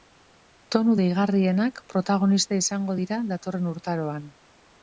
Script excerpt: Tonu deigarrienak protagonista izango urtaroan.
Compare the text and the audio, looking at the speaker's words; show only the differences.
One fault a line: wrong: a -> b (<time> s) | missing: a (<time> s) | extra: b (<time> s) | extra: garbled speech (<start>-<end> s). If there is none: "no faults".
extra: dira datorren (3.0 s)